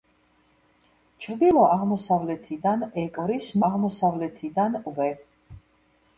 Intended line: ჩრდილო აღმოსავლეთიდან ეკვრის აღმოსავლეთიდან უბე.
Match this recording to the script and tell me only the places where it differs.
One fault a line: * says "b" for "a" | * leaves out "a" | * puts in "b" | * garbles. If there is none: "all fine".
all fine